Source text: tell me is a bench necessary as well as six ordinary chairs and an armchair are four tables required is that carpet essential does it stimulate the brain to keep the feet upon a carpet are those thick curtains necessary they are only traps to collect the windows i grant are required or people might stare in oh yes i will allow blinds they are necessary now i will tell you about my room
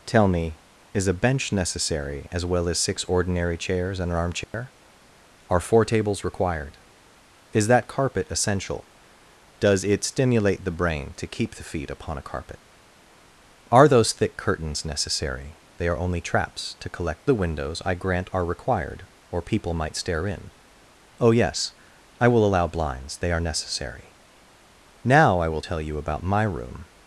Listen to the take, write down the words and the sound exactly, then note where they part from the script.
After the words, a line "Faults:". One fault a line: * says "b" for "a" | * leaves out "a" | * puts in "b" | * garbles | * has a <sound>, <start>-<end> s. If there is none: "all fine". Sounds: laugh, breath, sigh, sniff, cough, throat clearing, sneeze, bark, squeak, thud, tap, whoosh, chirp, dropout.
tell me is a bench necessary as well as six ordinary chairs and an armchair are four tables required is that carpet essential does it stimulate the brain to keep the feet upon a carpet are those thick curtains necessary they are only traps to collect the windows i grant are required or people might stare in oh yes i will allow blinds they are necessary now i will tell you about my room
Faults:
* has a dropout, 4.4-4.5 s